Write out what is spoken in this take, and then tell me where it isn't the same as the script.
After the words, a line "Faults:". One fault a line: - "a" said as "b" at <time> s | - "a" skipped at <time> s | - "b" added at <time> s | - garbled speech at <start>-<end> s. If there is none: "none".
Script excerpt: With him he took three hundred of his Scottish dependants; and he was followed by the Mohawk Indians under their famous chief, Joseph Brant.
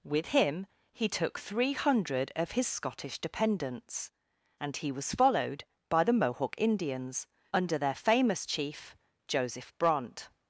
With him he took three hundred of his Scottish dependants; and he was followed by the Mohawk Indians under their famous chief, Joseph Brant.
Faults:
none